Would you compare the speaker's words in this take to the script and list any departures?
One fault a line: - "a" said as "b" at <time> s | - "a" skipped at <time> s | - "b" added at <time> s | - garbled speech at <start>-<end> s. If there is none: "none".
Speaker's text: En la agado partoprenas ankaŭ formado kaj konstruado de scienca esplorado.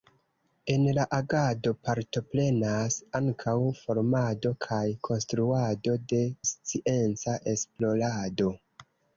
none